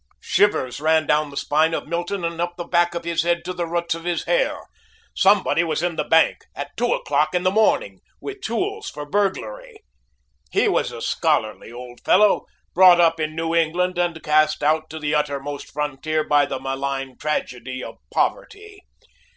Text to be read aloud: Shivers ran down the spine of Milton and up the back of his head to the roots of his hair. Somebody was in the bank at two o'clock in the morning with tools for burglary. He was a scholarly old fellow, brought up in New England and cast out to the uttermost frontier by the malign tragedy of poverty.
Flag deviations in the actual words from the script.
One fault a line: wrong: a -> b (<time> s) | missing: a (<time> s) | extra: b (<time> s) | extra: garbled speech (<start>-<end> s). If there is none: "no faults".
no faults